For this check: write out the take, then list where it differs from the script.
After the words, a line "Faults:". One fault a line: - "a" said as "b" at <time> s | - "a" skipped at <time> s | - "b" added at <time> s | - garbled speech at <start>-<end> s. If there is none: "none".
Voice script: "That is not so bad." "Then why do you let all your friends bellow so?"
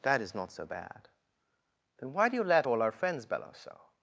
"That is not so bad." "Then why do you let all our friends bellow so?"
Faults:
- "your" said as "our" at 2.8 s